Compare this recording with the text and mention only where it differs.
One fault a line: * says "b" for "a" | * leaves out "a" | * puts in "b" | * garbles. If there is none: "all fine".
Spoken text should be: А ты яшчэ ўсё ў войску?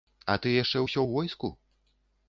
all fine